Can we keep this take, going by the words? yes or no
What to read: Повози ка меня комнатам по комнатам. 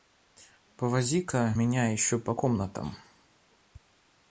no